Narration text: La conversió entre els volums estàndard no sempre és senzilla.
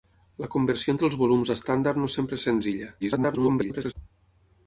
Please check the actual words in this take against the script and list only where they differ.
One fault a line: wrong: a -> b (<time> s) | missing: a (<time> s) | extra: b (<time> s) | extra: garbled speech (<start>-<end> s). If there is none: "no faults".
extra: garbled speech (3.0-3.9 s)